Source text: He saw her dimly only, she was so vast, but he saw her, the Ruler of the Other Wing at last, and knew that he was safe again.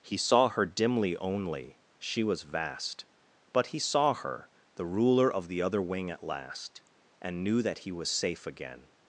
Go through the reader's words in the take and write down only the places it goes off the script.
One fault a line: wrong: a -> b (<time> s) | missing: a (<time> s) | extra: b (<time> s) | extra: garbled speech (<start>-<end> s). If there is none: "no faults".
missing: so (2.4 s)